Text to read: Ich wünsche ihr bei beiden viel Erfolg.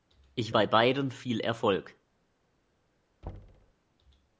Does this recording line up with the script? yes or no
no